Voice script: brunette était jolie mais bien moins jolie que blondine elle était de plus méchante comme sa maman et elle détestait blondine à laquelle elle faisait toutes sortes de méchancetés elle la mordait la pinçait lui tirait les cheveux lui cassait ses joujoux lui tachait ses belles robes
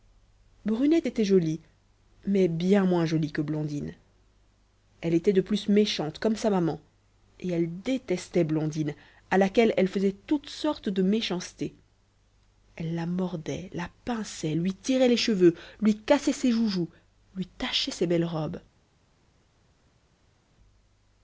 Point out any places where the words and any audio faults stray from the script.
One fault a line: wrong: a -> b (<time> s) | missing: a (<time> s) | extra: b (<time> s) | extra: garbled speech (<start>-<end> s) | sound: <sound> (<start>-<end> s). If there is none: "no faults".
no faults